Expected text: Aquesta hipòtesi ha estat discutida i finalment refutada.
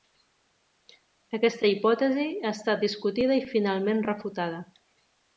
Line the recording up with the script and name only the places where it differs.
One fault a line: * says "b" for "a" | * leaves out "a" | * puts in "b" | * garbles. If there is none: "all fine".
all fine